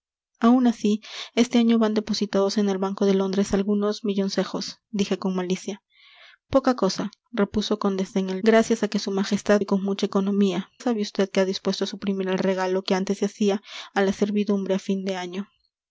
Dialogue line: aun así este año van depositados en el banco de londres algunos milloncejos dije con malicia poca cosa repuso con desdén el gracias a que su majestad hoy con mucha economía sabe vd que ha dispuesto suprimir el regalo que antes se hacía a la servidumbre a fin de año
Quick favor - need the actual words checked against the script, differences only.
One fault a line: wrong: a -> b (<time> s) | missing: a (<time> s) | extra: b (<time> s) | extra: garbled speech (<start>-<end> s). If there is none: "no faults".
no faults